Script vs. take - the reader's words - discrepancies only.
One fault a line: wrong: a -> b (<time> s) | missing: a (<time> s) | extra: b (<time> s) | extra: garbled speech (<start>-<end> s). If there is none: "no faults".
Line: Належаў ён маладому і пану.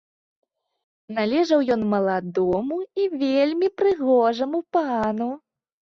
extra: вельмі прыгожаму (3.2 s)